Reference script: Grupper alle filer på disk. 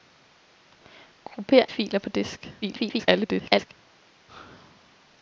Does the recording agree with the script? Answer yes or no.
no